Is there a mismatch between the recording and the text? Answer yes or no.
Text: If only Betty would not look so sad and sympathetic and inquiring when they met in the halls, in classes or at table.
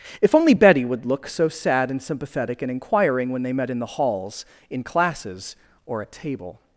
yes